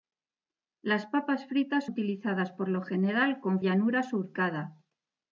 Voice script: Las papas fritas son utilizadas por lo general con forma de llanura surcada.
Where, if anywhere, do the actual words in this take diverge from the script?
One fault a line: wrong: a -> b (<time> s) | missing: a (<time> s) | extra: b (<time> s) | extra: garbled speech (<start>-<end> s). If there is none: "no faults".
missing: son (1.9 s)
missing: forma de (3.6 s)